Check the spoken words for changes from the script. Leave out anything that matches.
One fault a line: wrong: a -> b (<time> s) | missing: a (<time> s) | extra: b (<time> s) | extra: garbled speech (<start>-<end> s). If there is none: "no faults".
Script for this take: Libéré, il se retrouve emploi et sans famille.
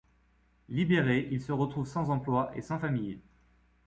extra: sans (1.9 s)